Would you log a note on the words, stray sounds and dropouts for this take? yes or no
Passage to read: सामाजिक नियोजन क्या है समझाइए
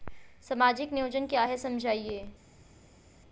no